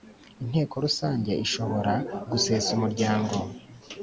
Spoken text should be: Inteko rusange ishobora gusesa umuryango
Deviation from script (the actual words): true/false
false